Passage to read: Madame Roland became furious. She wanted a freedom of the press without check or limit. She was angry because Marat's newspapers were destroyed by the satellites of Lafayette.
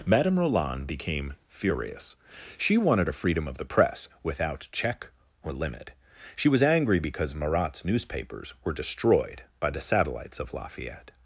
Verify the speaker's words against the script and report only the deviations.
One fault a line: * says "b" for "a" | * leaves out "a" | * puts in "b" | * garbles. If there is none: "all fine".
all fine